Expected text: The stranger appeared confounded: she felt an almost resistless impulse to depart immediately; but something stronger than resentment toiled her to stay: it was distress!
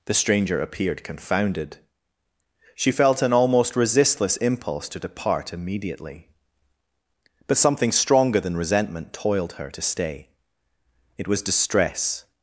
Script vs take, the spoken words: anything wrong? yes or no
no